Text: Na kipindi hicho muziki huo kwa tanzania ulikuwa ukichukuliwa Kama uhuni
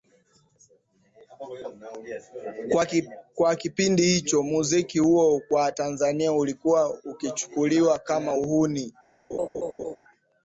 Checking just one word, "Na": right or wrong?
wrong